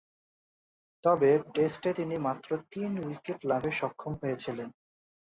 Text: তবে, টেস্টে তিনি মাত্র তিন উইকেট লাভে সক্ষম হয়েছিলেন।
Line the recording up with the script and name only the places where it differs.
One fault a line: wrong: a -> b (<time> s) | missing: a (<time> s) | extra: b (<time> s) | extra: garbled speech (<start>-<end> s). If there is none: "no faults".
no faults